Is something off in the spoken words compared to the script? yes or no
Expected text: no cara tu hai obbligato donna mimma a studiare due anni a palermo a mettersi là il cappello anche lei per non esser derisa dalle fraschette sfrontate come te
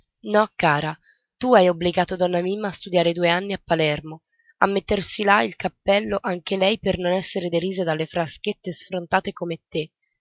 no